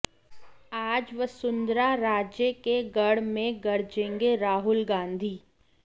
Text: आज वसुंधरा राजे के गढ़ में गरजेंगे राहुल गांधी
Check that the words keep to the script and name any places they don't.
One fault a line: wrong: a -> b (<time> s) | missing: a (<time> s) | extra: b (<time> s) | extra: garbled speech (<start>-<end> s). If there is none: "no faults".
no faults